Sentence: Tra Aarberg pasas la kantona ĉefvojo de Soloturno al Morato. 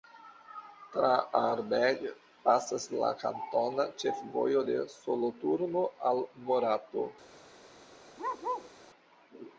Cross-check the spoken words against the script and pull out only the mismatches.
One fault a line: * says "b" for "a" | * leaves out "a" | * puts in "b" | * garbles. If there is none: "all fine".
all fine